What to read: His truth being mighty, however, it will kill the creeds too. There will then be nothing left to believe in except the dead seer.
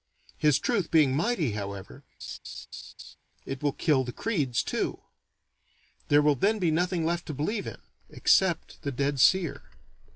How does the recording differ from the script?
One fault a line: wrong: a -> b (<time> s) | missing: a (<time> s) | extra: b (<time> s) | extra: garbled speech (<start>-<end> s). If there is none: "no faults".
no faults